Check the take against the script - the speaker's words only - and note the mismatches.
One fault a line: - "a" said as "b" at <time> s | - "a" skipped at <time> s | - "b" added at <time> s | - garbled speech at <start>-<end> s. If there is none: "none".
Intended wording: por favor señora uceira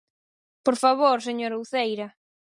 none